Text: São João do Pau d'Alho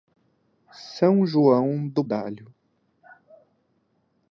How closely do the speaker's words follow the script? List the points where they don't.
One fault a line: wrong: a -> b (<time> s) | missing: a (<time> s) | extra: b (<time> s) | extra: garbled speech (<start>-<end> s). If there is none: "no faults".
missing: Pau (2.0 s)